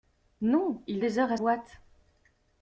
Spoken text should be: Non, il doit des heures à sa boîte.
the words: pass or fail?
fail